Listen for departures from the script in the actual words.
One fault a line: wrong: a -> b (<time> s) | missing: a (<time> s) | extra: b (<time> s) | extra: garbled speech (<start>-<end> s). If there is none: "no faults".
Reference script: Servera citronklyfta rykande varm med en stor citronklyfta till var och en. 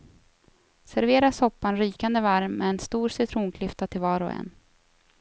wrong: citronklyfta -> soppan (1.3 s)